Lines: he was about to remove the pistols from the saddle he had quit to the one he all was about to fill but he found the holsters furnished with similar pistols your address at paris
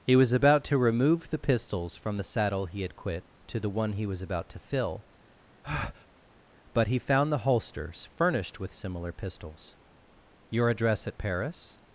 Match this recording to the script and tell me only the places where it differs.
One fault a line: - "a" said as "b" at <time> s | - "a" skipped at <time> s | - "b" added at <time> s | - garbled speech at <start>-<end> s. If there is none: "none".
- "all" skipped at 4.1 s